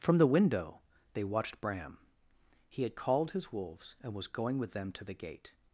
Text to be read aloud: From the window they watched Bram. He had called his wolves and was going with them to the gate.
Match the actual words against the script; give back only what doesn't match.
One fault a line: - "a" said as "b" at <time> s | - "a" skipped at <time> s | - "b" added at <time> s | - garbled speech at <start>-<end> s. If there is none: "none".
none